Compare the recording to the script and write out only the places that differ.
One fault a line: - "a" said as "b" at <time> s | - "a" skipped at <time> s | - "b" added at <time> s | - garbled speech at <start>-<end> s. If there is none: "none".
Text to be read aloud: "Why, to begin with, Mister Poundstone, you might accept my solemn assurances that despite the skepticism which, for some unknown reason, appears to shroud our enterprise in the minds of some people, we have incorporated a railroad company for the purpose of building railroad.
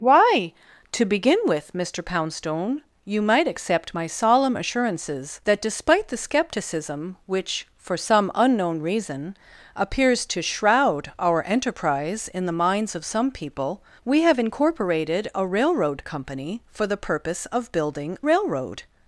none